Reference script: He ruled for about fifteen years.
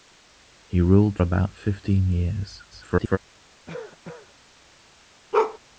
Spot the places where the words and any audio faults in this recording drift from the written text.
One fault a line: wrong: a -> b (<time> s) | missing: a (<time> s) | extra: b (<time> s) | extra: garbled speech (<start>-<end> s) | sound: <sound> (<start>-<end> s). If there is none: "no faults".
missing: for (1.2 s)
extra: garbled speech (2.7-3.2 s)
sound: cough (3.7-4.3 s)
sound: bark (5.3-5.6 s)